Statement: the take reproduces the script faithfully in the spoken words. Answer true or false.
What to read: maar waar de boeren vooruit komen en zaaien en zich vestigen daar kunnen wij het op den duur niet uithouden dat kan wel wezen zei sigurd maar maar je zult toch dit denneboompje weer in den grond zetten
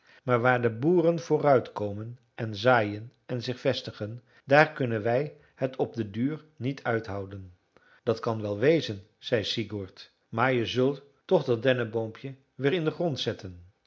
false